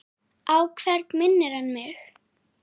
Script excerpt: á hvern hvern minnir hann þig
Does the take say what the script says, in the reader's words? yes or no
no